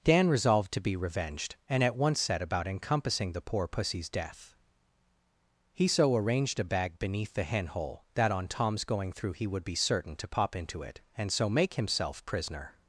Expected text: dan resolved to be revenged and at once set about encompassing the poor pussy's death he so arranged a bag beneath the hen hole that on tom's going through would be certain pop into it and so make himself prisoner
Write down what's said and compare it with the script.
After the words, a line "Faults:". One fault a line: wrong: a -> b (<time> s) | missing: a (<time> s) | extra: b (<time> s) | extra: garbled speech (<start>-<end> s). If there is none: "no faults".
dan resolved to be revenged and at once set about encompassing the poor pussy's death he so arranged a bag beneath the hen hole that on tom's going through he would be certain to pop into it and so make himself prisoner
Faults:
extra: he (9.3 s)
extra: to (10.2 s)